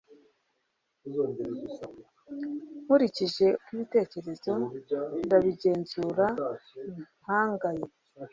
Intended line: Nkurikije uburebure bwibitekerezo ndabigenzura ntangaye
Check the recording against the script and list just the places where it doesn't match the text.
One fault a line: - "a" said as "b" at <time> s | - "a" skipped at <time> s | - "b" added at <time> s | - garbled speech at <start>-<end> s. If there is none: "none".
- "uburebure" skipped at 3.5 s